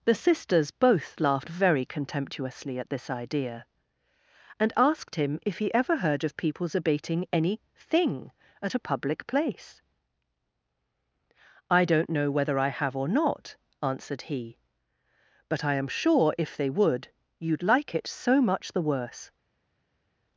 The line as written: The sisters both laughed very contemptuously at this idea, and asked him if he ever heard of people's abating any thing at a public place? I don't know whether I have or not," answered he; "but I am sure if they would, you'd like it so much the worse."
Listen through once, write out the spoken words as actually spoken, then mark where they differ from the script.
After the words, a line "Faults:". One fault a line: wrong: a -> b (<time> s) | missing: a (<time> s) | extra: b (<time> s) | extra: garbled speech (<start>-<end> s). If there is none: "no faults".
The sisters both laughed very contemptuously at this idea, and asked him if he ever heard of people's abating any thing at a public place? I don't know whether I have or not," answered he; "but I am sure if they would, you'd like it so much the worse."
Faults:
no faults